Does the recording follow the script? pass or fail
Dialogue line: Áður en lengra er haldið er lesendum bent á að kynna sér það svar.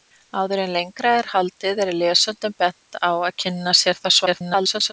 fail